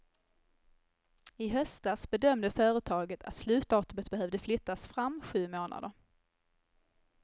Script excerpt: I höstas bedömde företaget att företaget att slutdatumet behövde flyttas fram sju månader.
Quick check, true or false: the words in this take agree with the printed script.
false